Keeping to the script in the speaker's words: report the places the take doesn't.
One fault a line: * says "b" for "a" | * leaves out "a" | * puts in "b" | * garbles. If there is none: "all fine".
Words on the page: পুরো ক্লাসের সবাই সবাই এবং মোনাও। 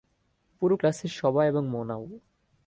* leaves out "সবাই"